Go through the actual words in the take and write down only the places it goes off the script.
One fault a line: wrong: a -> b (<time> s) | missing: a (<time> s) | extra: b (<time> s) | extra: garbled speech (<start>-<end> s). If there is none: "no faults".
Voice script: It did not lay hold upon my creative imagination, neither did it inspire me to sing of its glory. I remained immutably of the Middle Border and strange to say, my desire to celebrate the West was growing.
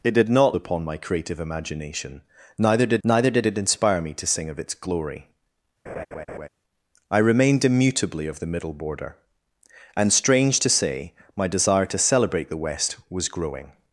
missing: lay hold (0.6 s)
extra: neither did (3.0 s)